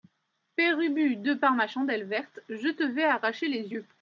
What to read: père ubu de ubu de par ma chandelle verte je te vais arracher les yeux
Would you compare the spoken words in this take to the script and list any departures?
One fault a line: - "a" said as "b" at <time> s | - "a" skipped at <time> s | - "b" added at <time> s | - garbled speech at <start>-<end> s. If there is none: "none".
- "ubu de" skipped at 1.3 s